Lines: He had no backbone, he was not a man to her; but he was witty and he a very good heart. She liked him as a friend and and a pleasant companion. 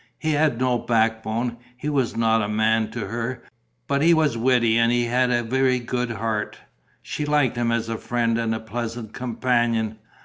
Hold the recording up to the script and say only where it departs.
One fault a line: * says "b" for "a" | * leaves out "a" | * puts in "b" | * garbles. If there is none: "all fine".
* puts in "had"
* leaves out "and"